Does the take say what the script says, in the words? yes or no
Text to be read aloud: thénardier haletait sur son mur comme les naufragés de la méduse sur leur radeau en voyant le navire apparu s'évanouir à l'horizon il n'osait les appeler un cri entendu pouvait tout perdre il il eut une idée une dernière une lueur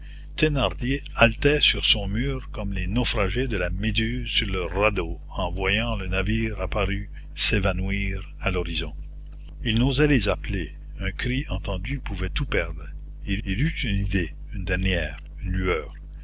yes